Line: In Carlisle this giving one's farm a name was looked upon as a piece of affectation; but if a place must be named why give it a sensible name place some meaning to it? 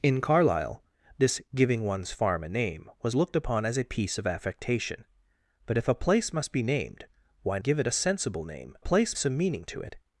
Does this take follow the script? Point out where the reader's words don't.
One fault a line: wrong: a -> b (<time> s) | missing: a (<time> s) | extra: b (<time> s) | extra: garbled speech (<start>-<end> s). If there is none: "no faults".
no faults